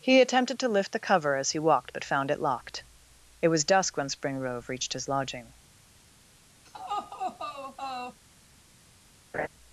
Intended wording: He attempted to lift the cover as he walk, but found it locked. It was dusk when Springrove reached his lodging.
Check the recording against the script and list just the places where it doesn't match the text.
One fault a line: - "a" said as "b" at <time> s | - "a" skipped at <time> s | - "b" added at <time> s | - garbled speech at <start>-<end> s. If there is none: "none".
- "walk" said as "walked" at 1.6 s